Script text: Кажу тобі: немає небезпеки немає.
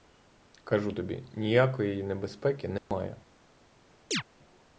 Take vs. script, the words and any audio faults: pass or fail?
fail